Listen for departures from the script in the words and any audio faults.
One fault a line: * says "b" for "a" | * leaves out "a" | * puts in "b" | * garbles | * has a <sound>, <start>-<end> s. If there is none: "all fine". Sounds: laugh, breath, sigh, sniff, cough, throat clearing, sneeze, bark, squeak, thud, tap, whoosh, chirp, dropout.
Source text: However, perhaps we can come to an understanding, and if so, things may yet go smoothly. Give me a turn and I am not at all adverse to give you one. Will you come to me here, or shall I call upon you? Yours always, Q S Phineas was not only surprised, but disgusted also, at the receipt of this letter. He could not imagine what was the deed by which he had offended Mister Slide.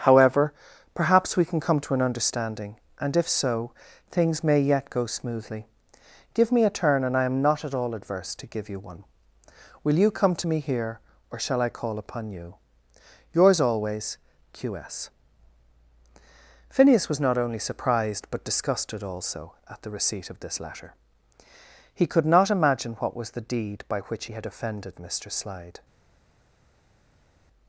all fine